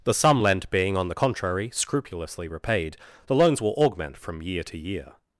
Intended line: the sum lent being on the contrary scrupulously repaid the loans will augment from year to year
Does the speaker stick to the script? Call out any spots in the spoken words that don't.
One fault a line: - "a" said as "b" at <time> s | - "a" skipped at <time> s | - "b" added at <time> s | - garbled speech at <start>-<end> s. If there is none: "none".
none